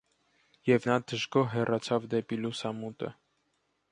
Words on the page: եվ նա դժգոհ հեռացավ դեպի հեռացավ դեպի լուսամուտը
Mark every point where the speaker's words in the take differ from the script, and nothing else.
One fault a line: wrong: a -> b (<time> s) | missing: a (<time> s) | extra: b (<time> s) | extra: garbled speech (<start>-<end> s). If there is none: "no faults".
missing: հեռացավ դեպի (2.4 s)